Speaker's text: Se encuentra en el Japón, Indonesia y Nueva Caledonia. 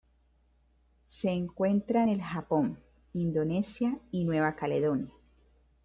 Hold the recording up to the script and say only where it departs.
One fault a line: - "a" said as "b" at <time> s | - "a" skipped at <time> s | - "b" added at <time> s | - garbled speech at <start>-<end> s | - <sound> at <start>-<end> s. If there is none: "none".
none